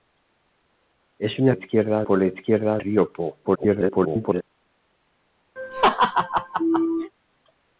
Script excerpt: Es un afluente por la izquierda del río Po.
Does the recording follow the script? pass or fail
fail